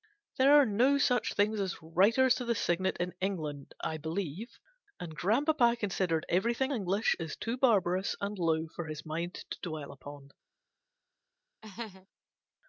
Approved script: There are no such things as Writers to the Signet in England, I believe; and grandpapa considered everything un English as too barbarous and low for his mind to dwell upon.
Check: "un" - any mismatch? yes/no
yes